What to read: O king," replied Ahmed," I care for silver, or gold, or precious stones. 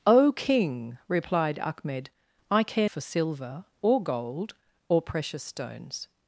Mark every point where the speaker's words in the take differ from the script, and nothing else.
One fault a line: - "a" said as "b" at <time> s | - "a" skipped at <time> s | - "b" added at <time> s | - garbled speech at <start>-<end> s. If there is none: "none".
none